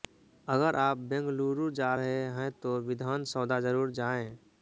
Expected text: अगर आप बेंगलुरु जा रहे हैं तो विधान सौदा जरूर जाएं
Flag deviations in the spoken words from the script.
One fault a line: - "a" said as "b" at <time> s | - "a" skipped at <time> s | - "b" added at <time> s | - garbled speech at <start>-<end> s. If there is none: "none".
none